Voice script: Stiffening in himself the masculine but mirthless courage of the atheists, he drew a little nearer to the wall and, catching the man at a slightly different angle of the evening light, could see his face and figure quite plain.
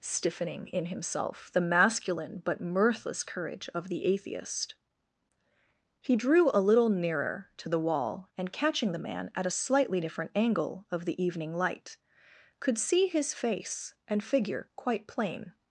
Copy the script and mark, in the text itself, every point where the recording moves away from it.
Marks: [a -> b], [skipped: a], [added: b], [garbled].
Stiffening in himself the masculine but mirthless courage of the [atheists, -> atheist] he drew a little nearer to the wall and, catching the man at a slightly different angle of the evening light, could see his face and figure quite plain.